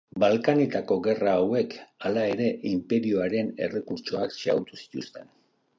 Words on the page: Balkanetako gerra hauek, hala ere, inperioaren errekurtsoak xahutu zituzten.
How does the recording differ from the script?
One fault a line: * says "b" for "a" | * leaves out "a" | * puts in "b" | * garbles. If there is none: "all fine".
all fine